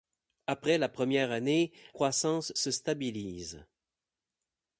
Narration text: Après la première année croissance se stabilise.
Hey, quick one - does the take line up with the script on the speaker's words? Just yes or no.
yes